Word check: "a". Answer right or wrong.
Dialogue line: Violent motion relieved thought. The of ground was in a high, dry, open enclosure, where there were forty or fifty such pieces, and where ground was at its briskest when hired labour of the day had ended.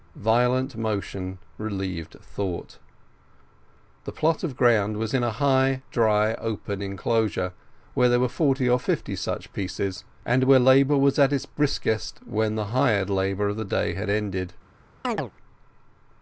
right